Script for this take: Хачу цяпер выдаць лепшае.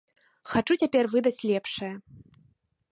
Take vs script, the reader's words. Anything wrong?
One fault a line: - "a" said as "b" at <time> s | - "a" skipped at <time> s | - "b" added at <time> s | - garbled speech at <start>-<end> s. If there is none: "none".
none